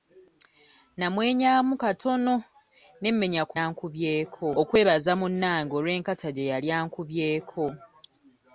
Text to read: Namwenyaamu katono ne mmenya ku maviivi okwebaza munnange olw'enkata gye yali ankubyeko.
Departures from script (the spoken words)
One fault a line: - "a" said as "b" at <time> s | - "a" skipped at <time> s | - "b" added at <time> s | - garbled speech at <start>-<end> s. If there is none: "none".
- "maviivi" said as "ankubyeko" at 3.6 s